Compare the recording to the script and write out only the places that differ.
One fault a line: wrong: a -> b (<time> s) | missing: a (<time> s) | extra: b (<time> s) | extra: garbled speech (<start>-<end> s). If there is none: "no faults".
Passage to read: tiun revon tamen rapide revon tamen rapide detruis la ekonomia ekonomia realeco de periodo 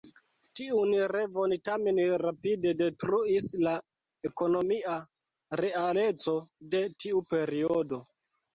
missing: revon tamen rapide (2.7 s)
missing: ekonomia (5.0 s)
extra: tiu (7.1 s)